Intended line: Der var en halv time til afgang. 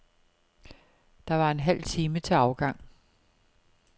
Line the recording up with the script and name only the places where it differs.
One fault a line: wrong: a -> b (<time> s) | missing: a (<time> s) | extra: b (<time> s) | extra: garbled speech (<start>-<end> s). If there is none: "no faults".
no faults